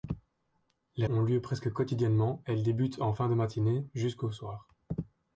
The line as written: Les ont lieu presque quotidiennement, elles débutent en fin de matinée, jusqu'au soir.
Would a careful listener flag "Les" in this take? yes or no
no